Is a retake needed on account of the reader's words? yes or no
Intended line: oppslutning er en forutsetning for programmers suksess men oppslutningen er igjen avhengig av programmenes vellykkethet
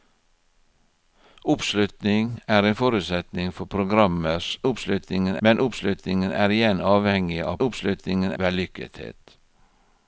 yes